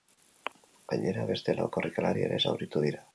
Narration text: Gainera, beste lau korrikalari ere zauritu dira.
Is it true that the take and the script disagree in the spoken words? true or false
false